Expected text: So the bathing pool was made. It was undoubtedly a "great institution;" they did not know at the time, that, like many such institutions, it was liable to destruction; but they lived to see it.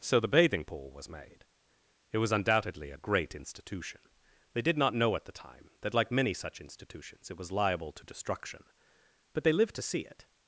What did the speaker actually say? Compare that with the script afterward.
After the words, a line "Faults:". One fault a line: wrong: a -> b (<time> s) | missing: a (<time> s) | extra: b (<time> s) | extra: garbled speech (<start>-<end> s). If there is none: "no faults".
So the bathing pool was made. It was undoubtedly a "great institution;" they did not know at the time, that, like many such institutions, it was liable to destruction; but they lived to see it.
Faults:
no faults